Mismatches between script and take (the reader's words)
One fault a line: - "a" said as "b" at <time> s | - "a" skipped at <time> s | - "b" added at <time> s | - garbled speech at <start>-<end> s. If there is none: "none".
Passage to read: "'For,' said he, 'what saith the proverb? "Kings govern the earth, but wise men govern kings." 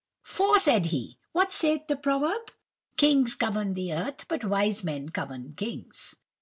none